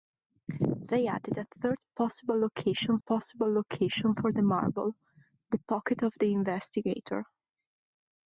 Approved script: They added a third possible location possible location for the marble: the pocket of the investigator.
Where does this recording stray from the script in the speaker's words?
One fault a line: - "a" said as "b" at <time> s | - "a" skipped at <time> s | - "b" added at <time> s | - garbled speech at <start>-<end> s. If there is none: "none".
none